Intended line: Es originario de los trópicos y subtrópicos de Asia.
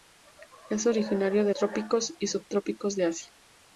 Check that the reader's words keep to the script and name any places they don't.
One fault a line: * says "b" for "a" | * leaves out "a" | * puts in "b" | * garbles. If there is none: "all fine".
* leaves out "los"